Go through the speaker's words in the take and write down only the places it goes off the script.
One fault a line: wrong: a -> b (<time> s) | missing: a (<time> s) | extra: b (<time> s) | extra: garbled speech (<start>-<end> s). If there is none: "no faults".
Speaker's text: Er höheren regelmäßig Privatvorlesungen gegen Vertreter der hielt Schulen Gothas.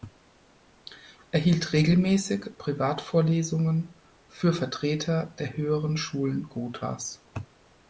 wrong: höheren -> hielt (1.4 s)
wrong: gegen -> für (4.3 s)
wrong: hielt -> höheren (5.5 s)